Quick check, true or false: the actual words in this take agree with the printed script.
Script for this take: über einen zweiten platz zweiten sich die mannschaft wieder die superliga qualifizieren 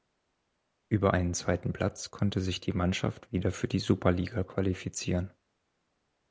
false